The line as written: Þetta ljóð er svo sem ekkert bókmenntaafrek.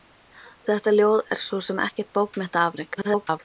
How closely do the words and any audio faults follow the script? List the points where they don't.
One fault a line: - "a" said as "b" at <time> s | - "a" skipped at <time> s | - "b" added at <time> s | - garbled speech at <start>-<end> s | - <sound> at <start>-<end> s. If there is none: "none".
- garbled speech at 2.9-3.4 s